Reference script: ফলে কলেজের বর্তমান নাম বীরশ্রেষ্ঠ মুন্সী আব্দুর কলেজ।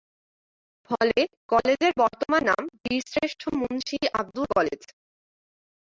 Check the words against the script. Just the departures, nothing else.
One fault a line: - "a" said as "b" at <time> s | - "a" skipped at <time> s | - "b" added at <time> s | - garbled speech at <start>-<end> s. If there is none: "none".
none